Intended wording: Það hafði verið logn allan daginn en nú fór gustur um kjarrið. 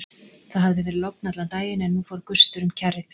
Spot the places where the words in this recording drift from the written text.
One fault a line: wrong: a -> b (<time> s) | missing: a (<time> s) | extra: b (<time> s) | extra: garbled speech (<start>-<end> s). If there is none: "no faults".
no faults